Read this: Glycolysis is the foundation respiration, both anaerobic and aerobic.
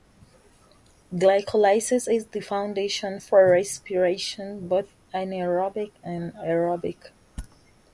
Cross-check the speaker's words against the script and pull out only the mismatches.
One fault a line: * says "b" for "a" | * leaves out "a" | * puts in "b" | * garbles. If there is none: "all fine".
* puts in "for"